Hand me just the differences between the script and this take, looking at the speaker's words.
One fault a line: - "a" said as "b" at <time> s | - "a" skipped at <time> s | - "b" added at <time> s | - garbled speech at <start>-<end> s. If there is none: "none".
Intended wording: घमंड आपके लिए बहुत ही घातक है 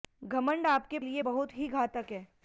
none